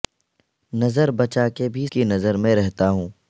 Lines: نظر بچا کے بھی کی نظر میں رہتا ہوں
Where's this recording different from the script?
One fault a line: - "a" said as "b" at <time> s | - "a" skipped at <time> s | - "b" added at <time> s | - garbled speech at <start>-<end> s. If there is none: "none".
none